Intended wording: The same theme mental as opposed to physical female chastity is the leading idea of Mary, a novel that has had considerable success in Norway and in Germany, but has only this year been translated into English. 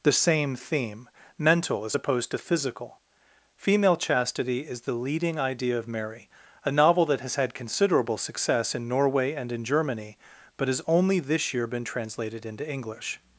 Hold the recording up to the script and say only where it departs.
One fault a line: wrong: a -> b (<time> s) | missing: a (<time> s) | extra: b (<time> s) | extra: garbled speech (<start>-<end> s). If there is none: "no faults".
no faults